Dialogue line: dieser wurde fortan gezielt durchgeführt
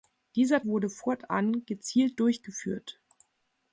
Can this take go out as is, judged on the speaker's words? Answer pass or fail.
pass